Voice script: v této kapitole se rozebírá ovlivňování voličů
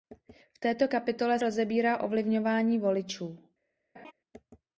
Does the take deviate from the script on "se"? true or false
true